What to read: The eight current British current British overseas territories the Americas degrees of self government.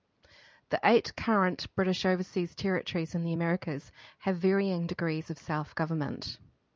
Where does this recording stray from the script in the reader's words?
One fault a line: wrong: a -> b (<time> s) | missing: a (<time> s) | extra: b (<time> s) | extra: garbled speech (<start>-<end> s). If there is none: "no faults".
missing: current British (2.0 s)
extra: in (3.1 s)
extra: have varying (4.2 s)